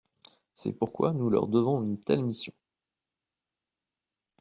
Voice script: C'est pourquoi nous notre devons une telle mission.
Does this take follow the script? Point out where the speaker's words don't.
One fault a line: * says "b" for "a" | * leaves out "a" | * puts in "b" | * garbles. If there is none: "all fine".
* says "leur" for "notre"